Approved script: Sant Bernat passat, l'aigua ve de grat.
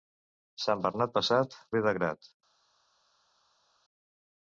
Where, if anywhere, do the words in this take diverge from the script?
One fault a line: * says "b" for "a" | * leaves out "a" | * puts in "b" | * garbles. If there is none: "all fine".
* leaves out "l'aigua"